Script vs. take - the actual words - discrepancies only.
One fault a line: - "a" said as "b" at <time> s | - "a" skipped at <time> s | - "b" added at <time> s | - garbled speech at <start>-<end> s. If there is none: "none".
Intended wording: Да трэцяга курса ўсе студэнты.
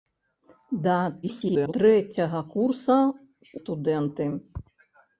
- garbled speech at 1.2-1.7 s
- "ўсе" skipped at 3.0 s